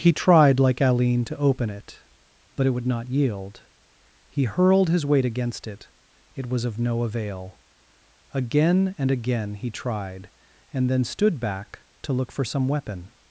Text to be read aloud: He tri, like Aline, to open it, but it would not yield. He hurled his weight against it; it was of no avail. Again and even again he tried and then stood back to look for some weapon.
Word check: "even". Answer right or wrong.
wrong